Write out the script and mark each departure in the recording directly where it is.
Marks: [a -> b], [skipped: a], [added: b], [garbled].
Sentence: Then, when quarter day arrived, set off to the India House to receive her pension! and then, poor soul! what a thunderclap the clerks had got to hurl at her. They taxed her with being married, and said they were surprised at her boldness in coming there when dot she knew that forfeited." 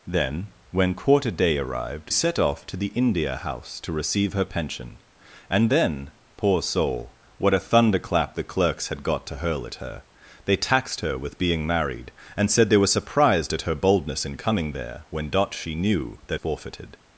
Then, when quarter day arrived, set off to the India House to receive her pension! and then, poor soul! what a thunderclap the clerks had got to hurl at her. They taxed her with being married, and said they were surprised at her boldness in coming there when dot she knew that forfeited."